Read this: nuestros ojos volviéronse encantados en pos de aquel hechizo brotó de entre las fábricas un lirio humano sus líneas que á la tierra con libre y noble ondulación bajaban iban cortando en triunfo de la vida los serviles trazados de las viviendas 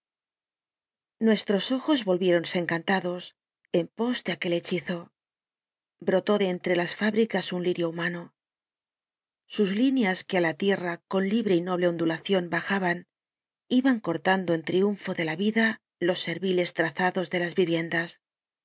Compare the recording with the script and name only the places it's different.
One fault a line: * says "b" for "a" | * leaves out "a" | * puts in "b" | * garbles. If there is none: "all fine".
all fine